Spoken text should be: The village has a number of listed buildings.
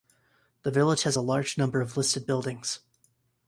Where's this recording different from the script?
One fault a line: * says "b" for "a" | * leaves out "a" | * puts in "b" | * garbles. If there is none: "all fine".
* puts in "large"